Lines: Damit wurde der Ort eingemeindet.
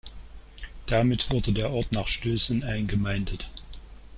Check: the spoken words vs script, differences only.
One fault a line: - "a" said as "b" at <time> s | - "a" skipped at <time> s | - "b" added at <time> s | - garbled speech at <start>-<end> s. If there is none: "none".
- "nach Stößen" added at 1.9 s